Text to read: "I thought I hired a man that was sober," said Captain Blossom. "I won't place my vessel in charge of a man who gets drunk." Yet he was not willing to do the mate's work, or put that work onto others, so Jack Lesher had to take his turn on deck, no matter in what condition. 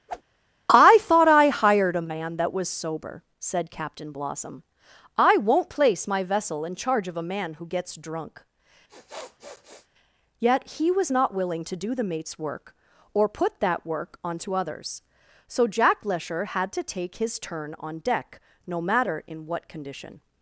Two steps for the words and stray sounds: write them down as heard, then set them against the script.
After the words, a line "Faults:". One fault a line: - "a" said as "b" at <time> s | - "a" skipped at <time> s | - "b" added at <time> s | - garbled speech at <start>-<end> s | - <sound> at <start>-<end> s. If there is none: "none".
"I thought I hired a man that was sober," said Captain Blossom. "I won't place my vessel in charge of a man who gets drunk." Yet he was not willing to do the mate's work, or put that work onto others, so Jack Lesher had to take his turn on deck, no matter in what condition.
Faults:
- whoosh at 0.1-0.2 s
- sniff at 8.9-9.9 s